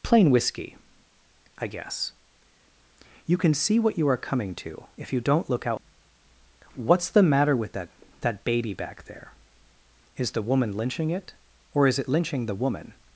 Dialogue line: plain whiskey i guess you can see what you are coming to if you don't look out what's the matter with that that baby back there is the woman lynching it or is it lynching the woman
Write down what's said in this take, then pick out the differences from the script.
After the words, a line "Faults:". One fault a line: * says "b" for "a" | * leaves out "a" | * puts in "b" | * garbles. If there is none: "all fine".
plain whiskey i guess you can see what you are coming to if you don't look out what's the matter with that that baby back there is the woman lynching it or is it lynching the woman
Faults:
all fine